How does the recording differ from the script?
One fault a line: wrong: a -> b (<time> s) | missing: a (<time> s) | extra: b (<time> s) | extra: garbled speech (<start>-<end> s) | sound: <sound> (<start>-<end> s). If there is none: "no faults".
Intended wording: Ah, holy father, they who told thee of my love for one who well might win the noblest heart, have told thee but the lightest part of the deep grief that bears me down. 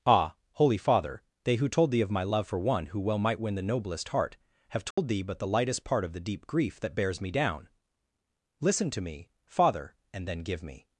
sound: dropout (4.9-5.0 s)
extra: Listen to me Father and then give me (8.6 s)